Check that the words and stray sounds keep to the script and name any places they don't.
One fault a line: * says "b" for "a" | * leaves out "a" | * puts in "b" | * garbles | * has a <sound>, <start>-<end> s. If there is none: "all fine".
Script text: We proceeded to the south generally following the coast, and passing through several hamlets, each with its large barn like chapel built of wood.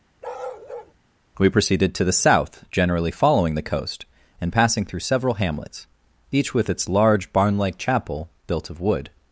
* has a bark, 0.2-0.9 s